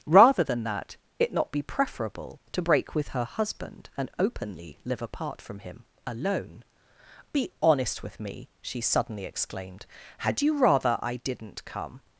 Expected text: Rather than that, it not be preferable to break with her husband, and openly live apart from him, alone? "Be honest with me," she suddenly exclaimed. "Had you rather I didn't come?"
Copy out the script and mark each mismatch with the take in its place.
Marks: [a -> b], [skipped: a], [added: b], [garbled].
Rather than that, it not be preferable to break with her husband, and openly live apart from him, alone? "Be honest with me," she suddenly exclaimed. "Had you rather I didn't come?"